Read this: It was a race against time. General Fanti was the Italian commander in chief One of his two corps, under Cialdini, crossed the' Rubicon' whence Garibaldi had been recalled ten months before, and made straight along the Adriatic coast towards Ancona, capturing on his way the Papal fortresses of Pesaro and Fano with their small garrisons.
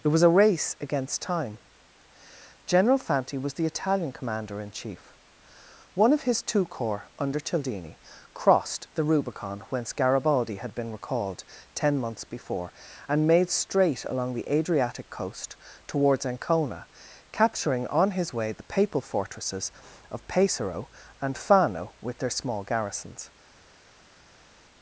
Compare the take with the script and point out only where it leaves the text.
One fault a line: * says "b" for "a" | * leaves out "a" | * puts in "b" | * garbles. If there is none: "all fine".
all fine